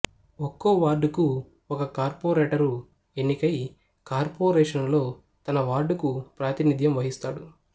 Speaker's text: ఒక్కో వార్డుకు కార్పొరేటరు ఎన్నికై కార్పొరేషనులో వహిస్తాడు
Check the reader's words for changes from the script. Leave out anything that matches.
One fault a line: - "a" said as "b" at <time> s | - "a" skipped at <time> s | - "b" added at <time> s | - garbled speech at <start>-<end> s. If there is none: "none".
- "ఒక" added at 1.7 s
- "తన వార్డుకు ప్రాతినిధ్యం" added at 5.5 s